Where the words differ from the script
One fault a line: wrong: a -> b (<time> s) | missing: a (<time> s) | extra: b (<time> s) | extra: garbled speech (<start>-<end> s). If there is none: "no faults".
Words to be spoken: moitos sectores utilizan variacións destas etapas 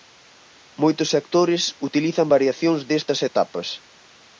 no faults